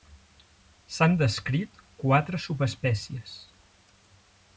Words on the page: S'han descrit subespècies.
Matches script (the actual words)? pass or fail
fail